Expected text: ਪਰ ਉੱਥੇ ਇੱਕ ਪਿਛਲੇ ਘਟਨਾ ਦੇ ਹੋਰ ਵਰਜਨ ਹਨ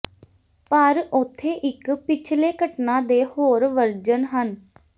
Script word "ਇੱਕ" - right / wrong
right